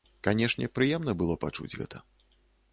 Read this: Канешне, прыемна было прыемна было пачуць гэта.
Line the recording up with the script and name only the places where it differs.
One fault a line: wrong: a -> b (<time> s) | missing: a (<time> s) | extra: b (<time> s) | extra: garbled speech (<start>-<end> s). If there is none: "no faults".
missing: прыемна было (1.4 s)